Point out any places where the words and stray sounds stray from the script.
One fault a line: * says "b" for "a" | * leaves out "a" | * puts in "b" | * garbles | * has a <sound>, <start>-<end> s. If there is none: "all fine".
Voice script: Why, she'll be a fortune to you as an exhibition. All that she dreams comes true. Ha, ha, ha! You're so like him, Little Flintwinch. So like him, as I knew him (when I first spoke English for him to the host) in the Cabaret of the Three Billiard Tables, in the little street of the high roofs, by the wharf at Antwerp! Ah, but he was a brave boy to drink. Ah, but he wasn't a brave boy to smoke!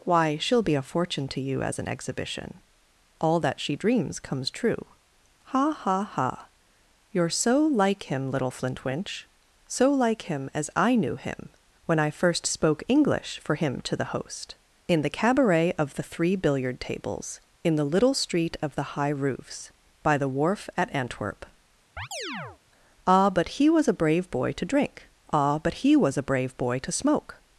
* has a chirp, 22.0-22.6 s
* says "was" for "wasn't"